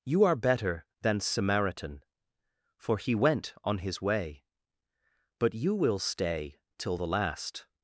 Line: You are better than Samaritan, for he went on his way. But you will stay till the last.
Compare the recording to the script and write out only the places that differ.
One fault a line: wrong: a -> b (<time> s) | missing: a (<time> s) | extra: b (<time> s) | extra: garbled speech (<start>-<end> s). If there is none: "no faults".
no faults